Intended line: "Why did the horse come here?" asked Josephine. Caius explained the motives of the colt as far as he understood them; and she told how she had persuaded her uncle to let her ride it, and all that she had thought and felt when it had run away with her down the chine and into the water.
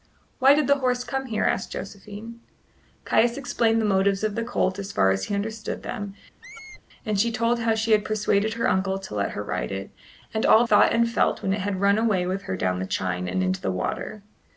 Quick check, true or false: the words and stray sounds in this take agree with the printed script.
false